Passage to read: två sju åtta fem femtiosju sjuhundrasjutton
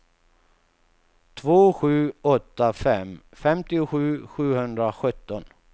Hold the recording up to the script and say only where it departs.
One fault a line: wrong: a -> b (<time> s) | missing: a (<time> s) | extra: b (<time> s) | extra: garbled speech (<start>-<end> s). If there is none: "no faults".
no faults